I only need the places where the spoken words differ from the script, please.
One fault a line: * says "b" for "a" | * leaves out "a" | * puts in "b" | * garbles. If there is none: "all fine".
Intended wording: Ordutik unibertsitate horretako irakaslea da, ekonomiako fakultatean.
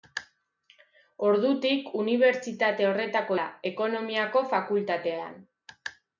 * leaves out "irakaslea"